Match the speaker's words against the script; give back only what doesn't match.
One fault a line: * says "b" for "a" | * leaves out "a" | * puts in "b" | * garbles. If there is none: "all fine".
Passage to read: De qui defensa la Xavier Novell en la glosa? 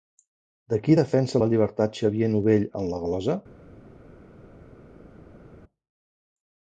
* puts in "llibertat"